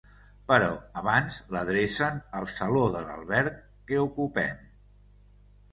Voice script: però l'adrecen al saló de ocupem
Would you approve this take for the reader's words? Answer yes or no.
no